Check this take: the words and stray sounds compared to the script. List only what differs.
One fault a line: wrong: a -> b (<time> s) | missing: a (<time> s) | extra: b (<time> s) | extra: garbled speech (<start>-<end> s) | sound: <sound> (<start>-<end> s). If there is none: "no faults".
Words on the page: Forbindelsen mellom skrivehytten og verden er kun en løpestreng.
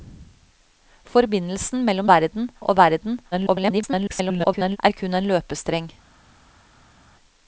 wrong: skrivehytten -> verden (2.1 s)
extra: garbled speech (3.3-4.8 s)